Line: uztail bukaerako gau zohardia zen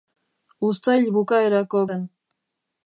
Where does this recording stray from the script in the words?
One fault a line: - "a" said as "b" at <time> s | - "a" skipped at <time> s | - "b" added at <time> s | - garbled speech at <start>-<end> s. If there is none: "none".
- "gau zohardia" skipped at 1.8 s